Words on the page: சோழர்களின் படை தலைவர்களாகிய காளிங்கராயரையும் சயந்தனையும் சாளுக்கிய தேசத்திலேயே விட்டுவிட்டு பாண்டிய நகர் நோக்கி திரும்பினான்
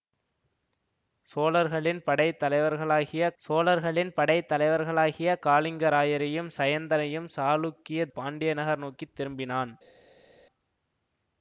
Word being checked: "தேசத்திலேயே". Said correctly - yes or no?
no